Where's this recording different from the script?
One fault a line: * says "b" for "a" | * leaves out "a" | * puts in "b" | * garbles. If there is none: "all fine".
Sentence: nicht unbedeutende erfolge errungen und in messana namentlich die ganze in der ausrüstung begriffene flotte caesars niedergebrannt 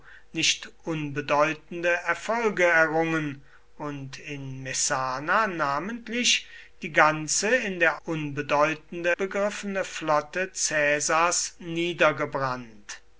* says "unbedeutende" for "ausrüstung"